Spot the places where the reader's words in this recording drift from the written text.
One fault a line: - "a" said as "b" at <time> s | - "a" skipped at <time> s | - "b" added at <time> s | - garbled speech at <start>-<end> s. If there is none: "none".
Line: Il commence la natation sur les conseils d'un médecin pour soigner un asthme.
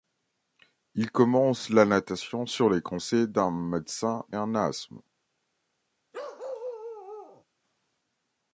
- "pour soigner" skipped at 4.2 s